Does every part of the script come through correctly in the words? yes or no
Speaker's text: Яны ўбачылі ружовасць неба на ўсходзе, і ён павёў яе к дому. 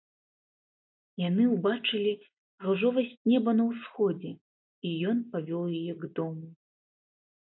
yes